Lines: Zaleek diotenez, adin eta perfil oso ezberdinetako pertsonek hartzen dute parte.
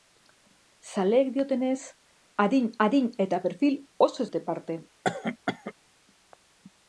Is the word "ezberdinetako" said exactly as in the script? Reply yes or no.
no